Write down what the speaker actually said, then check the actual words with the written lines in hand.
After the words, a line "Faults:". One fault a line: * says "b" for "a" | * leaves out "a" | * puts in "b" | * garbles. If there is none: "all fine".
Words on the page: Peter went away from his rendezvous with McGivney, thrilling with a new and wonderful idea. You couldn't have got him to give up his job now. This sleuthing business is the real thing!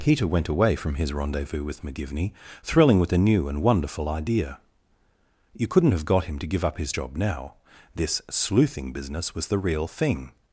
Peter went away from his rendezvous with McGivney, thrilling with a new and wonderful idea. You couldn't have got him to give up his job now. This sleuthing business was the real thing!
Faults:
* says "was" for "is"